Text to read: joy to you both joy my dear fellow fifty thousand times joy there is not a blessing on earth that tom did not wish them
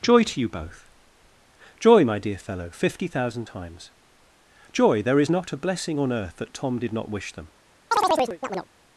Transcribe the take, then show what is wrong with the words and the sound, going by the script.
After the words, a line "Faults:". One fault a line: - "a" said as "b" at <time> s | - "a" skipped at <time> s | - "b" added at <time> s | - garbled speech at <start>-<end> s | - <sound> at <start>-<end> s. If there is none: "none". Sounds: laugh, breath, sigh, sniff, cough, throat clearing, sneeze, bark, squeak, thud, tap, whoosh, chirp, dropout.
joy to you both joy my dear fellow fifty thousand times joy there is not a blessing on earth that tom did not wish them
Faults:
- chirp at 7.9-8.7 s